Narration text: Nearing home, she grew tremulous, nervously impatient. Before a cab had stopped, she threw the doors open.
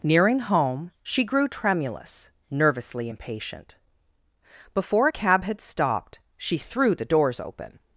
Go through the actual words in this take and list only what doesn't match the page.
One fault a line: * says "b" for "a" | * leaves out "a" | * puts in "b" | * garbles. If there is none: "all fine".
all fine